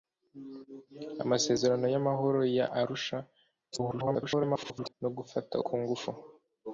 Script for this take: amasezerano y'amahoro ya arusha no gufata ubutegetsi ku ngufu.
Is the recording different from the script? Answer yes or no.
yes